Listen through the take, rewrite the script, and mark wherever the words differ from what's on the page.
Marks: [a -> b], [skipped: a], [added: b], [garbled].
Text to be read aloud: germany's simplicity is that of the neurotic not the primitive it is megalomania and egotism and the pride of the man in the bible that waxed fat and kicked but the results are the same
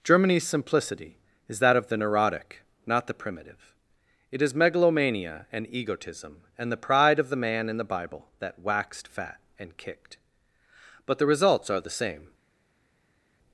germany's simplicity is that of the neurotic not the primitive it is megalomania and egotism and the pride of the man in the bible that waxed fat and kicked but the results are the same